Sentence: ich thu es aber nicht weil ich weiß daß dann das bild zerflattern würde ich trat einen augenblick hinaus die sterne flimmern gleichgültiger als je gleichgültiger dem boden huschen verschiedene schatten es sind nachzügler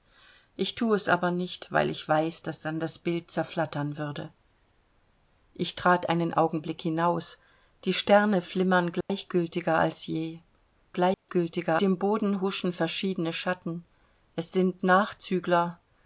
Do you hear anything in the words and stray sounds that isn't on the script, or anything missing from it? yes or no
yes